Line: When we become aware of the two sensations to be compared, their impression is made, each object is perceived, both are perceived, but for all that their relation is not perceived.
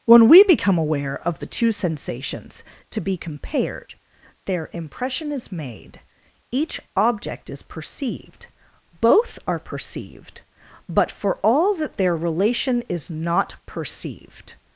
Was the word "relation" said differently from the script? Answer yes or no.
no